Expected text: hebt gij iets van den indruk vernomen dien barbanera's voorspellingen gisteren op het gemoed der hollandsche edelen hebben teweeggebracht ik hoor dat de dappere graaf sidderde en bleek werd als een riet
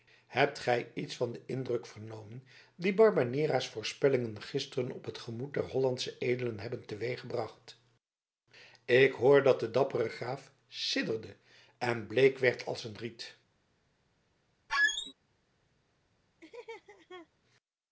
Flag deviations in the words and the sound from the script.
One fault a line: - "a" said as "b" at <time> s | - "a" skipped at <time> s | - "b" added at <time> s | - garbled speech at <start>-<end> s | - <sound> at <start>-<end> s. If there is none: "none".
- squeak at 14.7-15.1 s
- laugh at 16.4-17.3 s